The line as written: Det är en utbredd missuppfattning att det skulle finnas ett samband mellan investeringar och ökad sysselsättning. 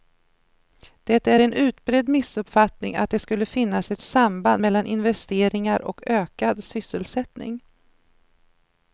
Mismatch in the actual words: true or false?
false